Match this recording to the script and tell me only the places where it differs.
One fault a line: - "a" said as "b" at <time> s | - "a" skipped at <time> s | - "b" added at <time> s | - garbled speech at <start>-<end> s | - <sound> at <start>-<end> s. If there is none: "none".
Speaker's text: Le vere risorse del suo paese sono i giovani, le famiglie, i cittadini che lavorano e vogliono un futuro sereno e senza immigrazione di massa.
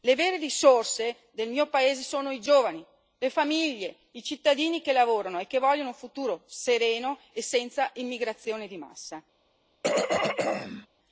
- "suo" said as "mio" at 1.5 s
- "che" added at 5.5 s
- throat clearing at 9.8-10.9 s